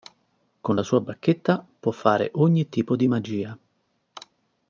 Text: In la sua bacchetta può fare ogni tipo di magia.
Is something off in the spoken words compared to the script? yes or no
yes